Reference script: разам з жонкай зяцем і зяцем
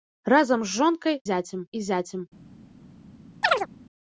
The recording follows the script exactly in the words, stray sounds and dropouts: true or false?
false